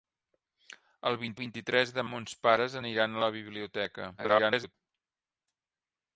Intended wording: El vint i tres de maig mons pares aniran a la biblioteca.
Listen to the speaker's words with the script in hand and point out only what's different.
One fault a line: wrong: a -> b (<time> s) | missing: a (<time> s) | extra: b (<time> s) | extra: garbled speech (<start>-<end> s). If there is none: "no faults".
extra: vint (1.4 s)
missing: maig (2.1 s)
extra: garbled speech (4.2-4.7 s)